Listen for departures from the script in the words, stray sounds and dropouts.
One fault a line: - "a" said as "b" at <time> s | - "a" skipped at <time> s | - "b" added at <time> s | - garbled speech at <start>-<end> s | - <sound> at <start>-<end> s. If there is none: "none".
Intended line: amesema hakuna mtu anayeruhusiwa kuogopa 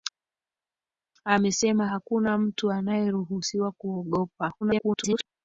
- garbled speech at 4.6-5.3 s